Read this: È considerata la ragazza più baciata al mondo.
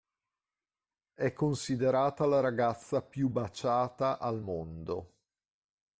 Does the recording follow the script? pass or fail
pass